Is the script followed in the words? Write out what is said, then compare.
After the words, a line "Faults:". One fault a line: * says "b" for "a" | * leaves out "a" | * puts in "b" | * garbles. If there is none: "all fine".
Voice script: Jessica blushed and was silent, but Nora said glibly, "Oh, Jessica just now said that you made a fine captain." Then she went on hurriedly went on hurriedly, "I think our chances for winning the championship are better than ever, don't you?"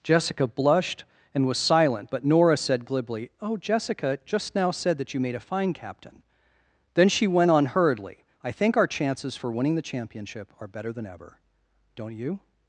Jessica blushed and was silent, but Nora said glibly, "Oh, Jessica just now said that you made a fine captain." Then she went on hurriedly, "I think our chances for winning the championship are better than ever, don't you?"
Faults:
* leaves out "went on hurriedly"